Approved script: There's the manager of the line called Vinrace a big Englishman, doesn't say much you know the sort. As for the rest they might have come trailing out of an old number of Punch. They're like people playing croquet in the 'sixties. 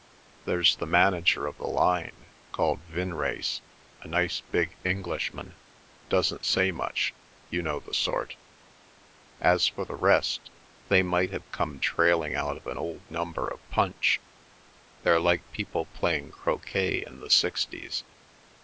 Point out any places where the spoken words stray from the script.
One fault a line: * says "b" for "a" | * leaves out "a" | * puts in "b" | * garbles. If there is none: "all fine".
* puts in "nice"